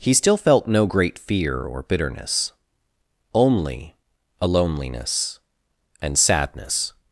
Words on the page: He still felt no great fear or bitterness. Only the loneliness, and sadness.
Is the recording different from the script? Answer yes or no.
yes